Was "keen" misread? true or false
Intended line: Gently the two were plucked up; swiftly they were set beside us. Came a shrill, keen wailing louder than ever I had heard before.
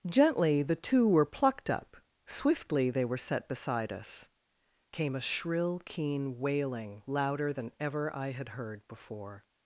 false